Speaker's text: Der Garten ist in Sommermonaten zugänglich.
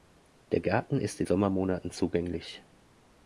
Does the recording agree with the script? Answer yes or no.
yes